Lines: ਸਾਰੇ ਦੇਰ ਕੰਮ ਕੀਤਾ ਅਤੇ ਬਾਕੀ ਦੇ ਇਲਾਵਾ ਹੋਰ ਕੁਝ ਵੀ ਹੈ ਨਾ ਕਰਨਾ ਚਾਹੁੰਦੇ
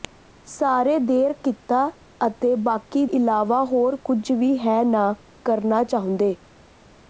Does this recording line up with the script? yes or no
no